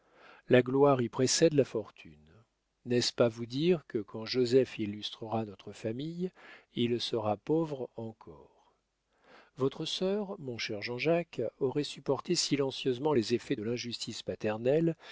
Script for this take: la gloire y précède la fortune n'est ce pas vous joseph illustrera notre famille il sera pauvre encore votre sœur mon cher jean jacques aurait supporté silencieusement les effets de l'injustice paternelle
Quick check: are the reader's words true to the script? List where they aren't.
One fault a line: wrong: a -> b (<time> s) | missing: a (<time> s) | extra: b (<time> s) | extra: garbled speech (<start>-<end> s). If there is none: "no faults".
extra: dire que quand (3.4 s)